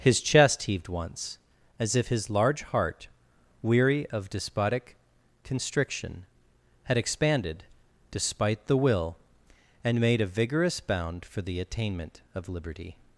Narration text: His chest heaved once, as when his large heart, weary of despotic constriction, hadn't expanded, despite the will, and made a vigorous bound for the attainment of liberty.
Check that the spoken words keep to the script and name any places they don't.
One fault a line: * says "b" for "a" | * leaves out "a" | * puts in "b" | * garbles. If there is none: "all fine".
* says "if" for "when"
* says "had" for "hadn't"